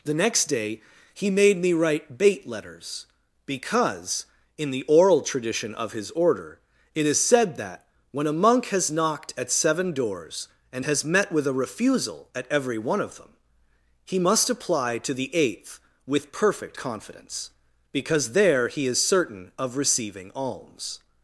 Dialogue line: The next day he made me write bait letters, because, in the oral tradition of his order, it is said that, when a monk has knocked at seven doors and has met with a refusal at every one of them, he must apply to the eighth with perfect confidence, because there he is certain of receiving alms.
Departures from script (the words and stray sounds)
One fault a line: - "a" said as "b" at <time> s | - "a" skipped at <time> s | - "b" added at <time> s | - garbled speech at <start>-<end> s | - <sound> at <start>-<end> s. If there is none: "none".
none